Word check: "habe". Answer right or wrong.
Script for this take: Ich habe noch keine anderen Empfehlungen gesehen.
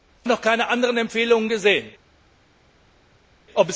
wrong